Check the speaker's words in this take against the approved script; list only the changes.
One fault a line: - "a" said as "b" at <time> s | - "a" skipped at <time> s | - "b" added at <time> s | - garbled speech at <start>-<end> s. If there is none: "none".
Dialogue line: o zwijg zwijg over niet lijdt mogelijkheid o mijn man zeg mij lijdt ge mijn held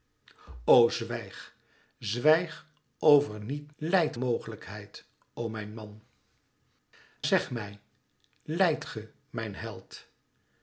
none